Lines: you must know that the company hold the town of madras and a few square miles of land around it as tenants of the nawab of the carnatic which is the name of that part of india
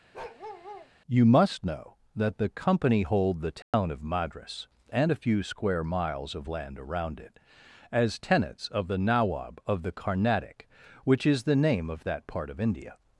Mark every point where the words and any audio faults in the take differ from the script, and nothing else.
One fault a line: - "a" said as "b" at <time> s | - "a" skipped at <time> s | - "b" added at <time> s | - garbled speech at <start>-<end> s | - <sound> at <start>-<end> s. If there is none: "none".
- bark at 0.1-0.9 s
- dropout at 3.6-3.7 s